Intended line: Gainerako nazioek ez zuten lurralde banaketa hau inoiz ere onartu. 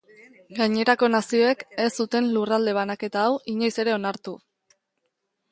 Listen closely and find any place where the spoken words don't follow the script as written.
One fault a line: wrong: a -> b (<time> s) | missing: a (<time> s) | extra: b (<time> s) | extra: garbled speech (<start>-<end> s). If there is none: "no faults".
no faults